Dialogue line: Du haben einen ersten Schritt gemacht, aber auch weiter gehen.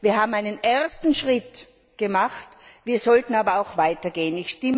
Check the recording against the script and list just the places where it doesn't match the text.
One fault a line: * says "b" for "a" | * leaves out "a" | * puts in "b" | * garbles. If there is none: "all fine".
* says "Wir" for "Du"
* puts in "wir sollten"